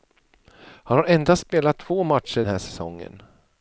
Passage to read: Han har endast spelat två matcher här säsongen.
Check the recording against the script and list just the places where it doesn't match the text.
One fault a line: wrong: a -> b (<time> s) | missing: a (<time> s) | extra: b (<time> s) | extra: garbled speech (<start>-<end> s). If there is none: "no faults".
no faults